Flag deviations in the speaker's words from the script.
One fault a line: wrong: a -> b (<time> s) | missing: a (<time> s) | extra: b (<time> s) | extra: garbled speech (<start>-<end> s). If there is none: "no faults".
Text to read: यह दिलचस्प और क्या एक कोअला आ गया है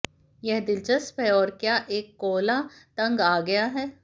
extra: है (1.2 s)
extra: तंग (3.0 s)